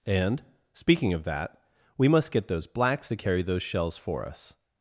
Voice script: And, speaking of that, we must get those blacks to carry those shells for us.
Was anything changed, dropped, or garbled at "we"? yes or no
no